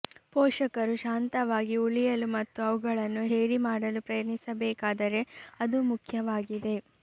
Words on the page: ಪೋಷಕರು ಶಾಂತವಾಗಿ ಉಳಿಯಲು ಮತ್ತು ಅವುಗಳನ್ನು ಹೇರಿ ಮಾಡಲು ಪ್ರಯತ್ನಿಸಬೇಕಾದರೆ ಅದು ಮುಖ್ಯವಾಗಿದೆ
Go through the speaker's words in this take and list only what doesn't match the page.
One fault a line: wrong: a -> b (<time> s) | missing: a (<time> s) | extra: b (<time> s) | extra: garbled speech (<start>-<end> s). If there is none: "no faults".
no faults